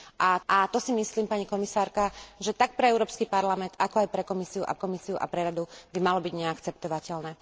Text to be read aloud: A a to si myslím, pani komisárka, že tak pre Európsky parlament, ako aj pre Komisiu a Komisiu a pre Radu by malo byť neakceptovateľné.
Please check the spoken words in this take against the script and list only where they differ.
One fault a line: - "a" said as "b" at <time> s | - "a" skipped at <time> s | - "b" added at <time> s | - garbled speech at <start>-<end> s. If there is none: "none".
none